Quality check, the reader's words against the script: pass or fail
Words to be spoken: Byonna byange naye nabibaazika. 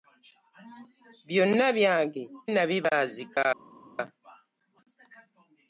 fail